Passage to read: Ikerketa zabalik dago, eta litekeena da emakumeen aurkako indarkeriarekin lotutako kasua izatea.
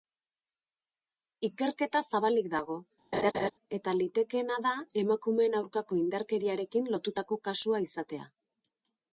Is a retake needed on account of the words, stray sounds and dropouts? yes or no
yes